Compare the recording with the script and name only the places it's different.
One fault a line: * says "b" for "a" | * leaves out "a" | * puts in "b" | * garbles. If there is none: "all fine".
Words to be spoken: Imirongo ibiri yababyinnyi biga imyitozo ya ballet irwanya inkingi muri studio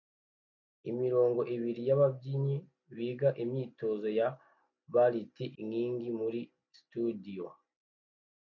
* leaves out "irwanya"